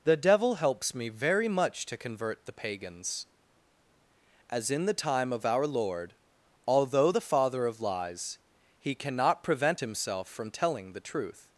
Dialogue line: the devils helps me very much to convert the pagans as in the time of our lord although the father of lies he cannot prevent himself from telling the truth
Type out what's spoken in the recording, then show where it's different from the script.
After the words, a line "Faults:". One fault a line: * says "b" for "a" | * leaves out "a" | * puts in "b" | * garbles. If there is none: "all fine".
the devil helps me very much to convert the pagans as in the time of our lord although the father of lies he cannot prevent himself from telling the truth
Faults:
* says "devil" for "devils"